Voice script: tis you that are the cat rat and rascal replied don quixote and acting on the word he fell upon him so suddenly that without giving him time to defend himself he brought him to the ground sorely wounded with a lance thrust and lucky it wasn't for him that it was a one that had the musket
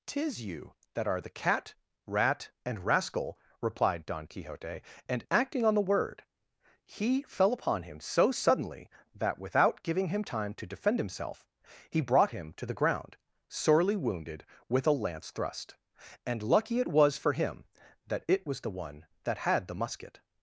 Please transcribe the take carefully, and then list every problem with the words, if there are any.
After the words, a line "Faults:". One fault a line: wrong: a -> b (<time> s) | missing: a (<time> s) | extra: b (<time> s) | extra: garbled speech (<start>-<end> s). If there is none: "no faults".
tis you that are the cat rat and rascal replied don quixote and acting on the word he fell upon him so suddenly that without giving him time to defend himself he brought him to the ground sorely wounded with a lance thrust and lucky it was for him that it was the one that had the musket
Faults:
wrong: wasn't -> was (16.9 s)
wrong: a -> the (18.6 s)